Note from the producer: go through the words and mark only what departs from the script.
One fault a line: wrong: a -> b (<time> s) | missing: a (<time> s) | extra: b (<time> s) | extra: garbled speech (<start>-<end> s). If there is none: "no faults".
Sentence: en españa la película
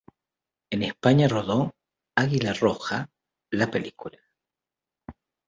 extra: rodó águila roja (1.2 s)